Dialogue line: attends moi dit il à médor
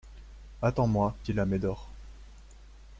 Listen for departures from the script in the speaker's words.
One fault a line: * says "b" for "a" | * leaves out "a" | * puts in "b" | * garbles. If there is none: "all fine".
* leaves out "dit"